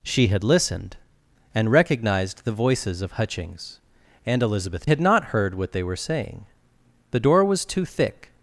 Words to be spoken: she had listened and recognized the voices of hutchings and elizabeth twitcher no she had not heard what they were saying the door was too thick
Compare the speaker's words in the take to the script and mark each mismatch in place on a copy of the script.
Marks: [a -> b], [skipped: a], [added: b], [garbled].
she had listened and recognized the voices of hutchings and elizabeth [skipped: twitcher no she] had not heard what they were saying the door was too thick